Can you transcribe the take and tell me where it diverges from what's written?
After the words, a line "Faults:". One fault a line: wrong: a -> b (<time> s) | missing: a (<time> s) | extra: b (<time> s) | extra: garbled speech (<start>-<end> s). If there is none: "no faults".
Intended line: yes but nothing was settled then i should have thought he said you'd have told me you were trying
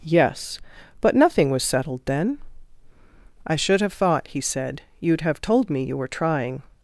yes but nothing was settled then i should have thought he said you'd have told me you were trying
Faults:
no faults